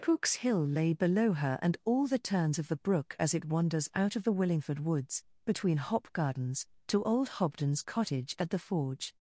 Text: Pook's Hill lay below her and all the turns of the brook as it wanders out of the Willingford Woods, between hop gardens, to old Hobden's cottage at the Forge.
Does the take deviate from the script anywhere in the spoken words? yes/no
no